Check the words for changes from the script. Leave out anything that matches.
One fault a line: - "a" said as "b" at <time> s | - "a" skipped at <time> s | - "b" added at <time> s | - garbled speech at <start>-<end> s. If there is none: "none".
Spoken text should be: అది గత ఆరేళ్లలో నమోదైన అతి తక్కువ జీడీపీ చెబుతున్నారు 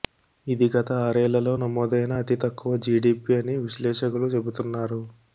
- "అది" said as "ఇది" at 0.5 s
- "అని విశ్లేషకులు" added at 3.4 s